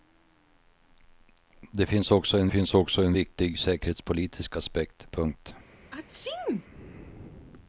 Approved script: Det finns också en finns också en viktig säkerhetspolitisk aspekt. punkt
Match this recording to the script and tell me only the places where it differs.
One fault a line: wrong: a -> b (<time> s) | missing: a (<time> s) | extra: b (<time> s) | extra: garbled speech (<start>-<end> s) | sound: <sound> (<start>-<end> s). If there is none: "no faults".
sound: sneeze (5.9-6.7 s)